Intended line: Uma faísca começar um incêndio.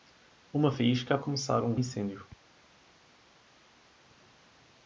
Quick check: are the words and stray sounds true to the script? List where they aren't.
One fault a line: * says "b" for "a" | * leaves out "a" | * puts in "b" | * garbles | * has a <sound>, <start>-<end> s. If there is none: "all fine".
all fine